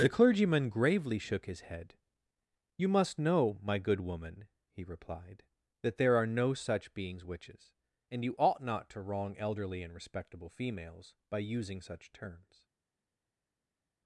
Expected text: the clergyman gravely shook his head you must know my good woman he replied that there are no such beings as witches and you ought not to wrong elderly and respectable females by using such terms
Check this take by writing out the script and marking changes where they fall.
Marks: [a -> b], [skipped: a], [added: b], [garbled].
the clergyman gravely shook his head you must know my good woman he replied that there are no such beings [skipped: as] witches and you ought not to wrong elderly and respectable females by using such terms